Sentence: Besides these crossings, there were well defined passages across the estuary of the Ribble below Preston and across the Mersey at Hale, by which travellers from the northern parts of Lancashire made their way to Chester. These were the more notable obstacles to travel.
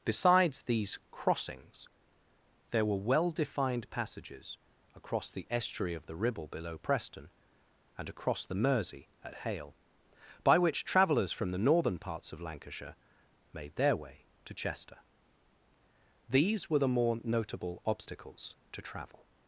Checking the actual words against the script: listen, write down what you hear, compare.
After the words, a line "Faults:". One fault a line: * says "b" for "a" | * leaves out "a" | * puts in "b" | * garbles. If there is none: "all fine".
Besides these crossings, there were well defined passages across the estuary of the Ribble below Preston and across the Mersey at Hale, by which travellers from the northern parts of Lancashire made their way to Chester. These were the more notable obstacles to travel.
Faults:
all fine